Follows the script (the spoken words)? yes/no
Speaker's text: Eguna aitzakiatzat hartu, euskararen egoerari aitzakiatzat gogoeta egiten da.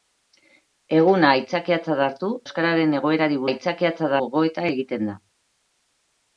yes